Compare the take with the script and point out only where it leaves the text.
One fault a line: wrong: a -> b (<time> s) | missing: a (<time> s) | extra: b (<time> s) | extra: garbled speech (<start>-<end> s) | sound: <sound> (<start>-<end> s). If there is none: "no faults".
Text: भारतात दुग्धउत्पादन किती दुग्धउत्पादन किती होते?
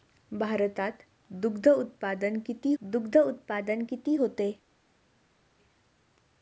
no faults